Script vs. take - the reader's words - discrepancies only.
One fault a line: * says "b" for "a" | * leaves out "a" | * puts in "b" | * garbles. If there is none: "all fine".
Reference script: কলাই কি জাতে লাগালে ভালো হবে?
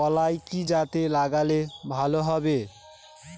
all fine